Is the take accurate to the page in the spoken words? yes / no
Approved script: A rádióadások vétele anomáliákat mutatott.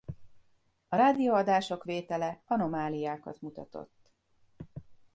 yes